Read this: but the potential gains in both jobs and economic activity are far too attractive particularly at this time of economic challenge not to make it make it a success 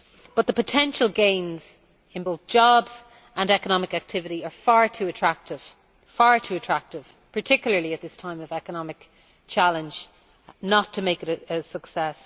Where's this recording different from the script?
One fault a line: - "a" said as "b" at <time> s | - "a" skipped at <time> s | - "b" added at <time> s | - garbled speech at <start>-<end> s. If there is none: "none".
- "make it" skipped at 11.4 s